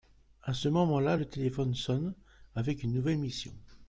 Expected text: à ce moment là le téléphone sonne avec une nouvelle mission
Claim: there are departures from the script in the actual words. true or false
false